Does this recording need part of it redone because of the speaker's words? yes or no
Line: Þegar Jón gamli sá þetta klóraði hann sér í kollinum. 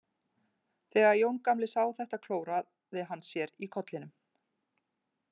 no